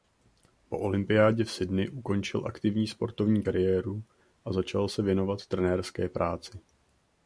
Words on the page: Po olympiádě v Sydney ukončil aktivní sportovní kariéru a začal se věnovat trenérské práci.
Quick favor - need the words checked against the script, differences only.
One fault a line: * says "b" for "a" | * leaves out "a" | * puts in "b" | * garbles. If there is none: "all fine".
all fine